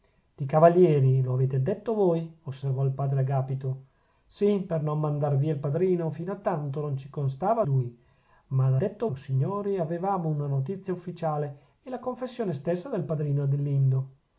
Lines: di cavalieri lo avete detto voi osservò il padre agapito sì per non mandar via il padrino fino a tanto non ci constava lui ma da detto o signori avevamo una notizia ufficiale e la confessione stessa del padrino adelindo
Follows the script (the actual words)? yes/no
yes